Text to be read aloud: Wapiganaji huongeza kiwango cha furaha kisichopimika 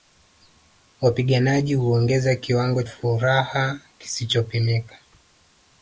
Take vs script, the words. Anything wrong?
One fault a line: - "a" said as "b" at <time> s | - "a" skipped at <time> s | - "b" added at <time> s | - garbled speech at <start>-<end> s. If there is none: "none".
- "cha" skipped at 2.8 s